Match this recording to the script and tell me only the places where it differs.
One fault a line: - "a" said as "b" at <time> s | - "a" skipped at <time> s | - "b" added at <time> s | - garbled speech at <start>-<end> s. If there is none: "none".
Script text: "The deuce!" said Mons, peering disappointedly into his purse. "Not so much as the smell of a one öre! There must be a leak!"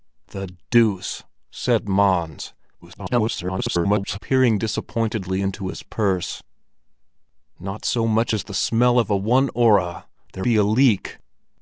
- garbled speech at 2.8-4.2 s
- "must" skipped at 10.5 s